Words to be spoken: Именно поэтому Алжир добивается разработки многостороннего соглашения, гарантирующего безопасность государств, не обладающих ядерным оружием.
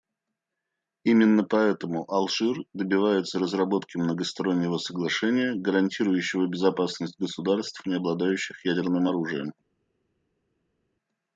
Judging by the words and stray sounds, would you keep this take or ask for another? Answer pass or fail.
pass